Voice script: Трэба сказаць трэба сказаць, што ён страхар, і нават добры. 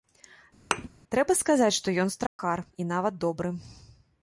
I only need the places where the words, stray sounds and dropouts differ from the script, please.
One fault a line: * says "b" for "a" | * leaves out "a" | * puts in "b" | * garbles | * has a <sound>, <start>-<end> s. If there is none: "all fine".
* has a thud, 0.7-0.9 s
* leaves out "трэба сказаць"
* has a dropout, 2.3-2.4 s